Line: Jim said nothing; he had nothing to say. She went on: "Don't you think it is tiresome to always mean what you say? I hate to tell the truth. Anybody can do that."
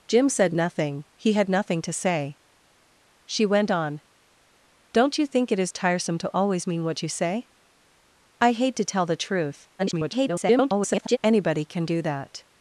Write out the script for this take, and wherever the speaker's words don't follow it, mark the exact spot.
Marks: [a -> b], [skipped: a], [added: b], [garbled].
Jim said nothing; he had nothing to say. She went on: "Don't you think it is tiresome to always mean what you say? I hate to tell the truth. [garbled] Anybody can do that."